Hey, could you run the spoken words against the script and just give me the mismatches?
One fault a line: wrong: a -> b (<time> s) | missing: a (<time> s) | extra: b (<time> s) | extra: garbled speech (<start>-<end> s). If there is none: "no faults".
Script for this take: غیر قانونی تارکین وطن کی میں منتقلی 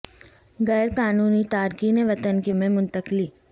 no faults